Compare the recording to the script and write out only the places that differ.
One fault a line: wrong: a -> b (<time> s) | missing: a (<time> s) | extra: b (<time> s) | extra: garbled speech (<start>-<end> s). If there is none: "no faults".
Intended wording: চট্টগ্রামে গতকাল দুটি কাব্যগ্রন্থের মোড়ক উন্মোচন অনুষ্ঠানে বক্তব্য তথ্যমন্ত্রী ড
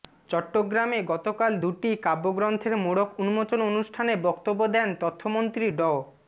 extra: দেন (4.7 s)